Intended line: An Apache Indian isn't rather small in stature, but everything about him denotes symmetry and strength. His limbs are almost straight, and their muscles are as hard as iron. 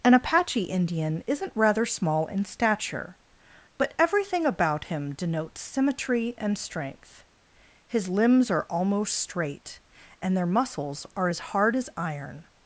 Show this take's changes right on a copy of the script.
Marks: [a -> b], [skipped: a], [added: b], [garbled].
An Apache Indian isn't rather small in stature, but everything about him denotes symmetry and strength. His limbs are almost straight, and their muscles are as hard as iron.